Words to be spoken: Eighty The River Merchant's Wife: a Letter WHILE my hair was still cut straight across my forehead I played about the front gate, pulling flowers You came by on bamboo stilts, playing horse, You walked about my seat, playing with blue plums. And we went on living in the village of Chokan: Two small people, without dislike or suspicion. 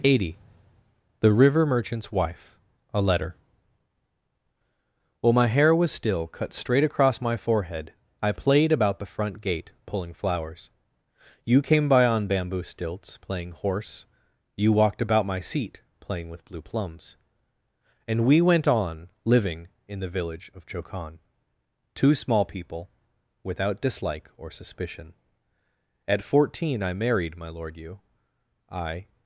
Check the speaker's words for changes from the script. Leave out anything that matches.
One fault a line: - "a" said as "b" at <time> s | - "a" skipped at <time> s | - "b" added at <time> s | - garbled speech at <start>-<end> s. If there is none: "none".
- "At fourteen I married My Lord you I" added at 26.1 s